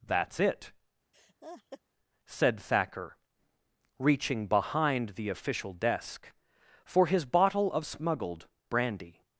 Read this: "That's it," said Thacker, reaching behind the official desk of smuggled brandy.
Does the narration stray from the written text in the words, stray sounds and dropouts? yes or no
yes